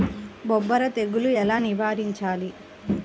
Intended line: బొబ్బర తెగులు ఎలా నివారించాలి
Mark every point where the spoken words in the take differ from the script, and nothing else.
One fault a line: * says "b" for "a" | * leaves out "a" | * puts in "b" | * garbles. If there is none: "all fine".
all fine